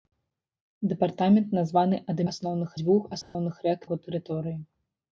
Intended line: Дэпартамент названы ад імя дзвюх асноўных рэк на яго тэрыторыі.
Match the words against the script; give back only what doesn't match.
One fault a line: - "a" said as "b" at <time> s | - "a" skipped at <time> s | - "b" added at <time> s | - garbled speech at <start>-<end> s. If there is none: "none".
- "імя" said as "асноўных" at 2.3 s
- "на" skipped at 3.8 s